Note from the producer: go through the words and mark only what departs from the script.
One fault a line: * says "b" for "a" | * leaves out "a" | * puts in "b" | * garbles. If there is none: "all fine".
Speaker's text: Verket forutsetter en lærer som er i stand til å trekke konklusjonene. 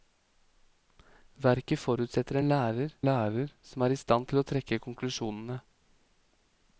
* puts in "lærer"